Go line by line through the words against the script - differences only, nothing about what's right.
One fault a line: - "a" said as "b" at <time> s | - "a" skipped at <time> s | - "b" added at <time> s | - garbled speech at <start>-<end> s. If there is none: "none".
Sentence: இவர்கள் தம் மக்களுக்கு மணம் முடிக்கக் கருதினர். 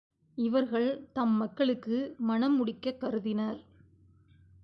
none